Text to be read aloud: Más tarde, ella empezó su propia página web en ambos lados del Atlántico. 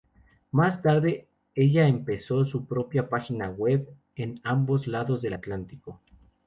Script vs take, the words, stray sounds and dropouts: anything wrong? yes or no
no